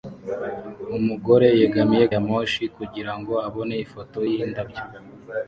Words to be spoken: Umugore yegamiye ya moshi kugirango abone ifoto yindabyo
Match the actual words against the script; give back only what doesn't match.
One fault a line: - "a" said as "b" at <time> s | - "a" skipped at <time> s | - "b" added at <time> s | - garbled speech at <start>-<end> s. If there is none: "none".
none